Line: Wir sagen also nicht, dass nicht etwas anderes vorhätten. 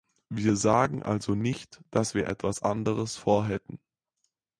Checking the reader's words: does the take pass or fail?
fail